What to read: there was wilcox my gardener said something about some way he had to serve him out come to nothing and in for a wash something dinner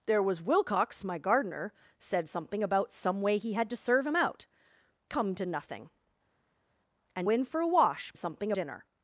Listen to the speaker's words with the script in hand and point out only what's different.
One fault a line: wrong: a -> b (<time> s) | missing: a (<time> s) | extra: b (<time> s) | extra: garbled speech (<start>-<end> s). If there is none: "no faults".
no faults